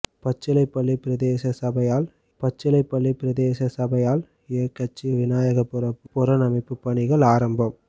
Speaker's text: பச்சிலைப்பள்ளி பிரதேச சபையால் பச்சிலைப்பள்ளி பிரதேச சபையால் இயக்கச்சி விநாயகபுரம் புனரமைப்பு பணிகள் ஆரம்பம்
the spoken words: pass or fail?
pass